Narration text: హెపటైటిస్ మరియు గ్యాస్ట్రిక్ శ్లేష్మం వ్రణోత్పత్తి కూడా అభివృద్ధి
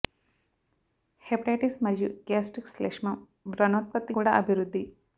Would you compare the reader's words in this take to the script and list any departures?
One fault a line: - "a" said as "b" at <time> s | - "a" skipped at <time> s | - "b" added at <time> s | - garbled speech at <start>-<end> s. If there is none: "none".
none